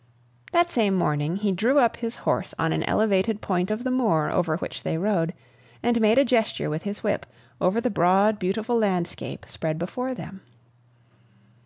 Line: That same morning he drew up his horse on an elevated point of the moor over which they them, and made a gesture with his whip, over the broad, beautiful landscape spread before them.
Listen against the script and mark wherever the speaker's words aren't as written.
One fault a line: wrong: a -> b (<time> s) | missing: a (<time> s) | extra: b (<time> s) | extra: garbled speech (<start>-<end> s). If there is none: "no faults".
wrong: them -> rode (5.0 s)